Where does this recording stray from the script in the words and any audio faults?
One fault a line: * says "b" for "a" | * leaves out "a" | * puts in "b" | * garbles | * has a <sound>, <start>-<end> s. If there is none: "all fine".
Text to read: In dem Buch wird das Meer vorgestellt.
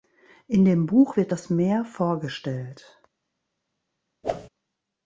* has a whoosh, 4.2-4.5 s